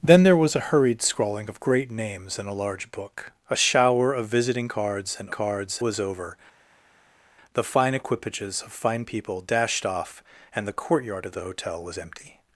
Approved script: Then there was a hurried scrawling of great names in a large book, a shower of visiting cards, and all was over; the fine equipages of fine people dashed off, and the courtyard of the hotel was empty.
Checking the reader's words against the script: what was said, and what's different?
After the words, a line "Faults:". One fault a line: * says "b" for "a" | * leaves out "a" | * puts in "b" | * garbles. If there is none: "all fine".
Then there was a hurried scrawling of great names in a large book, a shower of visiting cards, and cards was over; the fine equipages of fine people dashed off, and the courtyard of the hotel was empty.
Faults:
* says "cards" for "all"